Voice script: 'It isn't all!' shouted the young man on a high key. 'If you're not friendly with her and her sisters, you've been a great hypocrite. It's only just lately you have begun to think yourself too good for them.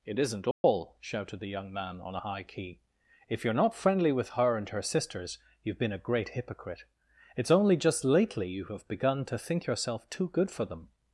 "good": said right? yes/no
yes